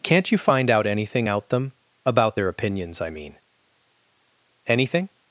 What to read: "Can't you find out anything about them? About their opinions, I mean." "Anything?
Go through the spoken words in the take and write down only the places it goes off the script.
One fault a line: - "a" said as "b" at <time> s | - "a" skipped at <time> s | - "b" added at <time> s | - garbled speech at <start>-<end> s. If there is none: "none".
- "about" said as "out" at 1.3 s